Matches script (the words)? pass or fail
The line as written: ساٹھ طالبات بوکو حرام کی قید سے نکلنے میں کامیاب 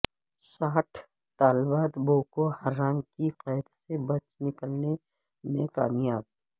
fail